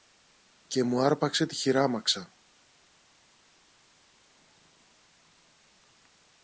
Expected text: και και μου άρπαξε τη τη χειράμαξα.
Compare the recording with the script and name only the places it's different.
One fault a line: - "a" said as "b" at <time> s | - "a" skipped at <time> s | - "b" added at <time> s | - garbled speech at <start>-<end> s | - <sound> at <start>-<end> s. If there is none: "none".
- "και" skipped at 0.8 s
- "τη" skipped at 1.6 s